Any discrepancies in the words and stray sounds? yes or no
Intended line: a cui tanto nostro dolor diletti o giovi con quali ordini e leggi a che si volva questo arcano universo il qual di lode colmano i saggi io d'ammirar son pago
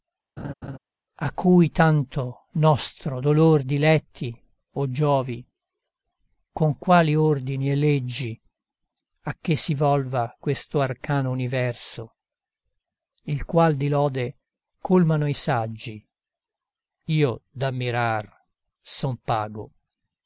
yes